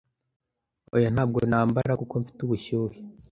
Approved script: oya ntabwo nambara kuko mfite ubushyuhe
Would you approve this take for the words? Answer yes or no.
yes